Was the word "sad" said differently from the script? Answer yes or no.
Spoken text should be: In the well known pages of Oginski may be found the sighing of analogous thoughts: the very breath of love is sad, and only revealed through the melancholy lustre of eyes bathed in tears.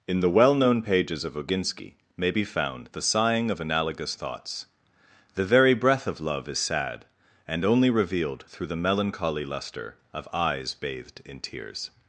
no